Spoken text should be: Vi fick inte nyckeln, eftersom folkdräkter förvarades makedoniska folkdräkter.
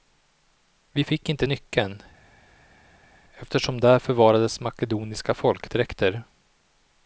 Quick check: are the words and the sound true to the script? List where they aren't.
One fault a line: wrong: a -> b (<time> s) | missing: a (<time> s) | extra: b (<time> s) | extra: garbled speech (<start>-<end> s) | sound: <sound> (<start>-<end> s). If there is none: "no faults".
wrong: folkdräkter -> där (3.8 s)